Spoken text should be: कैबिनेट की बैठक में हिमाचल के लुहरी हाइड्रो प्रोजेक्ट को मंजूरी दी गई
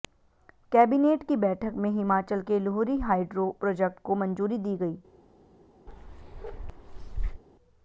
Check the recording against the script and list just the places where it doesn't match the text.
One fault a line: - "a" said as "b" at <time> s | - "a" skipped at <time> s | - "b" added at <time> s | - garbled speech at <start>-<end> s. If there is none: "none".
none